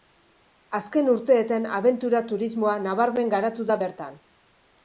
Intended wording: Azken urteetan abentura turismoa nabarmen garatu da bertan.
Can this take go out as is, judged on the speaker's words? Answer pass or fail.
pass